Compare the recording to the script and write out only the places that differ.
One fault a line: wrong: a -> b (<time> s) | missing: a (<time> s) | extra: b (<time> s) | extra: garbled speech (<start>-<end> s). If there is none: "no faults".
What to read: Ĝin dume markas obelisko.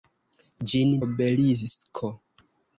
missing: dume markas (0.9 s)